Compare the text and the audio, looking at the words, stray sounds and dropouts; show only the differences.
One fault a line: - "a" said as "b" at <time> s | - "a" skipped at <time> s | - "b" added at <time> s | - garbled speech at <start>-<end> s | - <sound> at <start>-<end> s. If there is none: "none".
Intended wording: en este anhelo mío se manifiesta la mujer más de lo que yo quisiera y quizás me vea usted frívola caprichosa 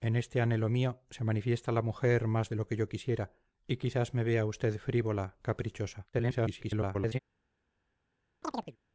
- garbled speech at 6.1-7.2 s
- chirp at 8.4-8.8 s